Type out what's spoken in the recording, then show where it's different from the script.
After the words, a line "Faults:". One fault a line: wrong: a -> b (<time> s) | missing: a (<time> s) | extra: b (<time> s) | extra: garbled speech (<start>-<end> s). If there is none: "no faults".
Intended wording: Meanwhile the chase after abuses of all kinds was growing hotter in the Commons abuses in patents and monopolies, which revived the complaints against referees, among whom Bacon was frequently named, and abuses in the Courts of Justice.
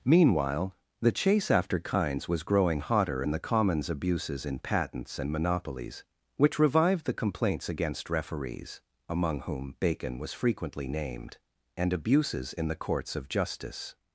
Meanwhile the chase after kinds was growing hotter in the Commons abuses in patents and monopolies, which revived the complaints against referees, among whom Bacon was frequently named, and abuses in the Courts of Justice.
Faults:
missing: abuses of all (1.8 s)